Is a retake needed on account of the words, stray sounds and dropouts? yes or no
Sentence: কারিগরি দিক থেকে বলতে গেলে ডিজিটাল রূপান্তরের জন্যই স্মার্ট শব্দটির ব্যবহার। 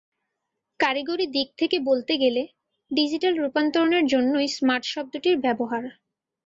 no